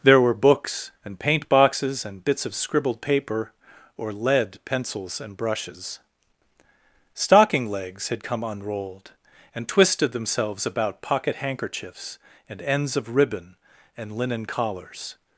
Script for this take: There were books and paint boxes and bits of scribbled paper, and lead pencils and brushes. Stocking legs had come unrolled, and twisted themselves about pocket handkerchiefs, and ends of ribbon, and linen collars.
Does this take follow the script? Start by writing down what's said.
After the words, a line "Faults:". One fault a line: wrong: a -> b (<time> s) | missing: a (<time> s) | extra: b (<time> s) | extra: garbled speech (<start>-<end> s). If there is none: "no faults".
There were books and paint boxes and bits of scribbled paper, or lead pencils and brushes. Stocking legs had come unrolled, and twisted themselves about pocket handkerchiefs, and ends of ribbon, and linen collars.
Faults:
wrong: and -> or (4.0 s)